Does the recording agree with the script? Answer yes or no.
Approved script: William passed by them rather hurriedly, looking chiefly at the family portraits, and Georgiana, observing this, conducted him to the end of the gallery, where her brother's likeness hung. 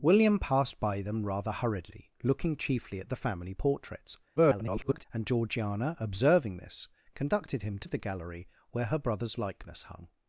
no